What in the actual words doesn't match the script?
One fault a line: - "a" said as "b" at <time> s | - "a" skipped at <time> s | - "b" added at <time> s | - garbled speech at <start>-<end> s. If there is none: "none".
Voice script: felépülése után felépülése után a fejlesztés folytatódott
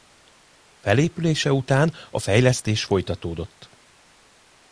- "felépülése után" skipped at 1.9 s